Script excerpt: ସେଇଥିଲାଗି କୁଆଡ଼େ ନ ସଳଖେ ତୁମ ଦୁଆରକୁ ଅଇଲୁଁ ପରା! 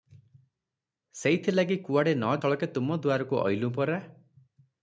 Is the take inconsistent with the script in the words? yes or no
no